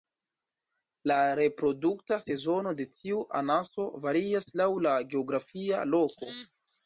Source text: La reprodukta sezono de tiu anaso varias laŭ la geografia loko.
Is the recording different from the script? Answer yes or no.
no